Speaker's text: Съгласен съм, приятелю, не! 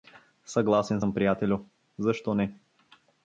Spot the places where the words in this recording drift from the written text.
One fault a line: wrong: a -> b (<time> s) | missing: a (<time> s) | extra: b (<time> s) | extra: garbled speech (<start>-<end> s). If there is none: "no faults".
extra: защо (2.0 s)